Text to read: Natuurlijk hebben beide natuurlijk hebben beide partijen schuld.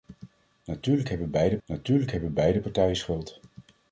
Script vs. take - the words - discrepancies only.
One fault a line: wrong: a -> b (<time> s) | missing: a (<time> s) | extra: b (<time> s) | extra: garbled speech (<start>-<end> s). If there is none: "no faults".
no faults